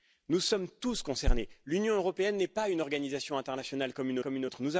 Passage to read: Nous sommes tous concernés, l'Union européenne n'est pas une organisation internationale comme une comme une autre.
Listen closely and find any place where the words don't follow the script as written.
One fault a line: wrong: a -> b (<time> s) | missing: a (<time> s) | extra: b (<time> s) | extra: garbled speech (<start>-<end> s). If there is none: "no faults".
no faults